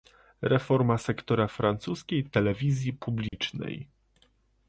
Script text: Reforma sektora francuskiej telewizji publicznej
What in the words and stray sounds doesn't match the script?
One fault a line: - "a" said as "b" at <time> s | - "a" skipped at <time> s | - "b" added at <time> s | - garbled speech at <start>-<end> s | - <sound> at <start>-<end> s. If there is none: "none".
- dropout at 3.3-3.3 s